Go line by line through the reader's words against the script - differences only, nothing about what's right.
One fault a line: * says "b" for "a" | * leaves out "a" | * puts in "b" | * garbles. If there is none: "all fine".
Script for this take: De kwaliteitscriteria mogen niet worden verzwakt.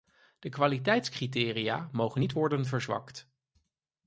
all fine